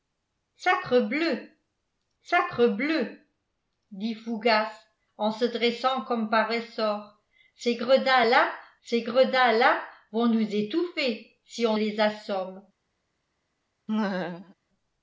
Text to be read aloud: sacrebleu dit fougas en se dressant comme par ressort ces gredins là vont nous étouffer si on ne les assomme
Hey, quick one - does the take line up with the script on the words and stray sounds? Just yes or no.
no